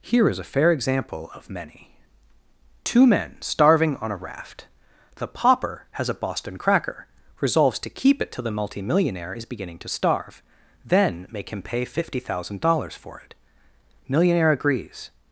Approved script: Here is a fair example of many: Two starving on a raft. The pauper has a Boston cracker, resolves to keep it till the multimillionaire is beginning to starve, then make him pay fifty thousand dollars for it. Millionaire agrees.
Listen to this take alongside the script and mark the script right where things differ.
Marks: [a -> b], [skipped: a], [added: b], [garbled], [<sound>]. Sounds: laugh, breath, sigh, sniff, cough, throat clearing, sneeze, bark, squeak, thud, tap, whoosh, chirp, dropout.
Here is a fair example of many: Two [added: men] starving on a raft. The pauper has a Boston cracker, resolves to keep it till the multimillionaire is beginning to starve, then make him pay fifty thousand dollars for it. Millionaire agrees.